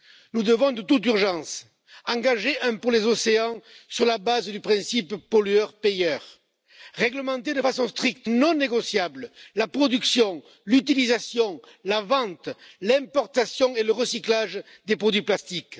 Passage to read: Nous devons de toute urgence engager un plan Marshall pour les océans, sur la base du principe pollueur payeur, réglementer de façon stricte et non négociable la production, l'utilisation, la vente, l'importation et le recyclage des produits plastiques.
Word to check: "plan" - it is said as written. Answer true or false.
false